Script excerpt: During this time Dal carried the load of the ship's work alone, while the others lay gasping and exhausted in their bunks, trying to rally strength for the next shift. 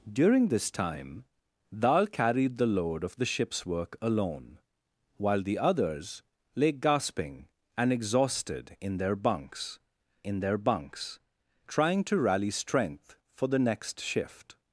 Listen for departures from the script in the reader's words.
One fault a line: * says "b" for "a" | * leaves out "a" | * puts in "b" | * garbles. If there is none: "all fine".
* puts in "in their bunks"